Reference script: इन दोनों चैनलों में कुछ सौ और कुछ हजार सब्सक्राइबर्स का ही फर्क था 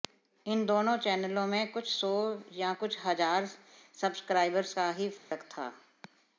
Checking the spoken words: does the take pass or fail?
fail